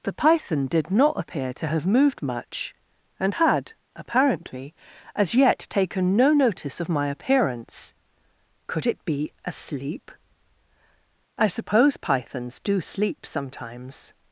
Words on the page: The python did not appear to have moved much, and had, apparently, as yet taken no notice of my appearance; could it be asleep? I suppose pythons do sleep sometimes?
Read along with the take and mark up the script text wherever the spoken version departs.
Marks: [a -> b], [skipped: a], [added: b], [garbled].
The python did not appear to have moved much, and had, apparently, as yet taken no notice of my appearance; could it be asleep? I suppose pythons do sleep sometimes?